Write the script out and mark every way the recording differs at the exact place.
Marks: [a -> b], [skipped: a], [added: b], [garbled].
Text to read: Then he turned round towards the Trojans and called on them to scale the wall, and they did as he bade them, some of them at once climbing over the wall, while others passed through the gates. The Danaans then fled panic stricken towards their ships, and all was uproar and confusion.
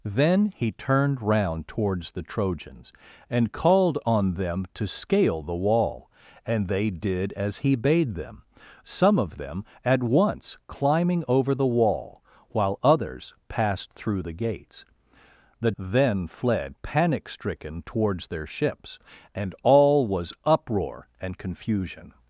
Then he turned round towards the Trojans and called on them to scale the wall, and they did as he bade them, some of them at once climbing over the wall, while others passed through the gates. The [skipped: Danaans] then fled panic stricken towards their ships, and all was uproar and confusion.